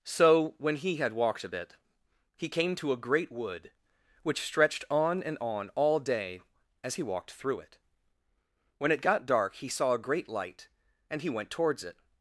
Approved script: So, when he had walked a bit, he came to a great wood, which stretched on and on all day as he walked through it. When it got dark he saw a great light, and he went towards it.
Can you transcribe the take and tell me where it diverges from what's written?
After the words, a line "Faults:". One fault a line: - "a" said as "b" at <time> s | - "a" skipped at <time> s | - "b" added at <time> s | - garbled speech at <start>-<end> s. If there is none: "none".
So, when he had walked a bit, he came to a great wood, which stretched on and on all day as he walked through it. When it got dark he saw a great light, and he went towards it.
Faults:
none